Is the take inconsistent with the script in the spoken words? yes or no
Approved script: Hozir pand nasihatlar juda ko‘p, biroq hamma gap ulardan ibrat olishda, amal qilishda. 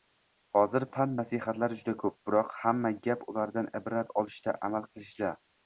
no